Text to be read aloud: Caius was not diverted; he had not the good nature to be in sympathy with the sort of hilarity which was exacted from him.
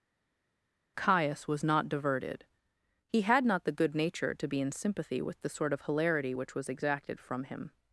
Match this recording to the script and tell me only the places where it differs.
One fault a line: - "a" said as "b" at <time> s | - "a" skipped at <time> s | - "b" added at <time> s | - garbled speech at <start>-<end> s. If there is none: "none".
none